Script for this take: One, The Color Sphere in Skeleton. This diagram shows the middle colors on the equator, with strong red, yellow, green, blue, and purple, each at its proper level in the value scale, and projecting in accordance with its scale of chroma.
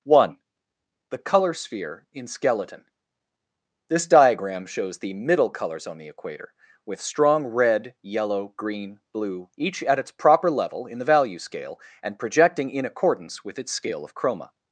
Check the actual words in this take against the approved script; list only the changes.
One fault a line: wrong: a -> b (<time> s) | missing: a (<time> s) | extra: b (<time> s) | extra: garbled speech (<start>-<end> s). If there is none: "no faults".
missing: and purple (9.5 s)